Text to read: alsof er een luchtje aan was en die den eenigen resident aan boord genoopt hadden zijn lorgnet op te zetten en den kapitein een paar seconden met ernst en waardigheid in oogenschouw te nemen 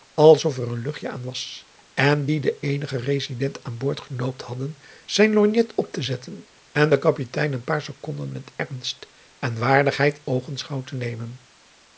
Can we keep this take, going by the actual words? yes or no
no